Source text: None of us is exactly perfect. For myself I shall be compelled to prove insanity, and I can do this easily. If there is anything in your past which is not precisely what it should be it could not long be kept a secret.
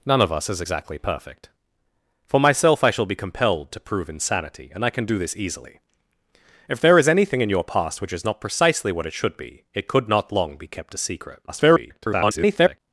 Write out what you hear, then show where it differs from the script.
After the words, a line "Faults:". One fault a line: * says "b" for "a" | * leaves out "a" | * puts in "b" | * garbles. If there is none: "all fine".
None of us is exactly perfect. For myself I shall be compelled to prove insanity, and I can do this easily. If there is anything in your past which is not precisely what it should be it could not long be kept a secret. [garbled]
Faults:
* garbles